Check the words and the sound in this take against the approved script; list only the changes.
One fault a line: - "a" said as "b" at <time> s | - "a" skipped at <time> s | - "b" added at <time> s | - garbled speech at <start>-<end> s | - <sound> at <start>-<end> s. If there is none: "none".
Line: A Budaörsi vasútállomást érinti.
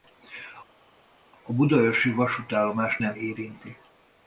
- "nem" added at 3.0 s